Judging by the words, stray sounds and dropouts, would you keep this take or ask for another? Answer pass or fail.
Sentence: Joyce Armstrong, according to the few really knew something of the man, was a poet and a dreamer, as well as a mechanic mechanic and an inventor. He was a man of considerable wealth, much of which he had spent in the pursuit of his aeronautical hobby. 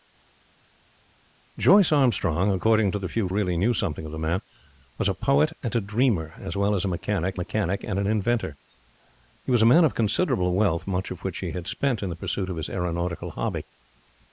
pass